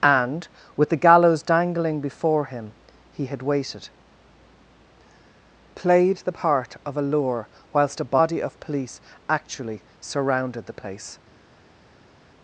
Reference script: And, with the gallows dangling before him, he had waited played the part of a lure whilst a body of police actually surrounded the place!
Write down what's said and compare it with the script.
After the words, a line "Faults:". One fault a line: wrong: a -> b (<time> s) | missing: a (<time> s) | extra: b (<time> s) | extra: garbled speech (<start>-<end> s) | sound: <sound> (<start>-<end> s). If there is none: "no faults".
And, with the gallows dangling before him, he had waited played the part of a lure whilst a body of police actually surrounded the place!
Faults:
no faults